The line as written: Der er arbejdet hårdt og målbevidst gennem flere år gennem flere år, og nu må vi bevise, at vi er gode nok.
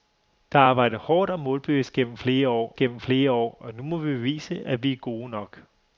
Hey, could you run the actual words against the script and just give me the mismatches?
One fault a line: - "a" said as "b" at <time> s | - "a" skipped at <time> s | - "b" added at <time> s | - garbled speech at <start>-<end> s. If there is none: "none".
none